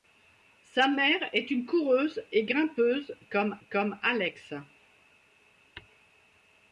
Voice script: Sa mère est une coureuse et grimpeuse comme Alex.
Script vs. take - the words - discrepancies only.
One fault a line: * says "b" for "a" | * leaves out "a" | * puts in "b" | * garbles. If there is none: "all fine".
* puts in "comme"